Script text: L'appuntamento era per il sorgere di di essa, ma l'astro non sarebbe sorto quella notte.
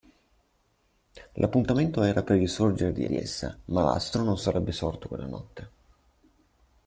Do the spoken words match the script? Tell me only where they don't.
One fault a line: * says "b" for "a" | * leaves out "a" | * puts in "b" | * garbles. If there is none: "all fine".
all fine